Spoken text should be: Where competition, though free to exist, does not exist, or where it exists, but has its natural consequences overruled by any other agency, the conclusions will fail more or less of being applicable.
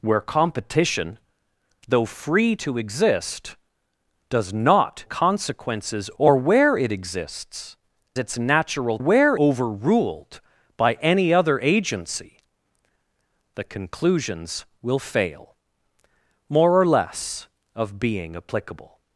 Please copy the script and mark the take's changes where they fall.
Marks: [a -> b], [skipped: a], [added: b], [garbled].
Where competition, though free to exist, does not [exist, -> consequences] or where it exists, [skipped: but has] its natural [consequences -> where] overruled by any other agency, the conclusions will fail more or less of being applicable.